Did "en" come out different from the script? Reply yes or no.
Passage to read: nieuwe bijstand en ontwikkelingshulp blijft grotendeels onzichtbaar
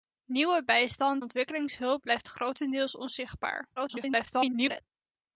yes